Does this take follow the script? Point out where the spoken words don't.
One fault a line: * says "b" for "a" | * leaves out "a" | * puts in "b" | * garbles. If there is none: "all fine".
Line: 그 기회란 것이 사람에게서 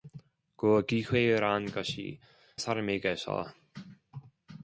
all fine